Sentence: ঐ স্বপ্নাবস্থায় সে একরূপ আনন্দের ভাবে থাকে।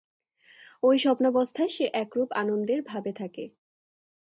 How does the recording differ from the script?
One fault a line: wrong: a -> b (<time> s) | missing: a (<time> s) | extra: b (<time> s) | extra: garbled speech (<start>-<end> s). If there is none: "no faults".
no faults